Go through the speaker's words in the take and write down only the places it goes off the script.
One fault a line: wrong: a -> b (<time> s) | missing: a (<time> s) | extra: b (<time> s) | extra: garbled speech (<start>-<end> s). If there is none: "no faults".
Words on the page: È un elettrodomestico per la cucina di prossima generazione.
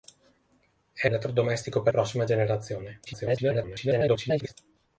missing: un (1.1 s)
missing: la cucina di (1.9 s)
extra: garbled speech (3.1-4.5 s)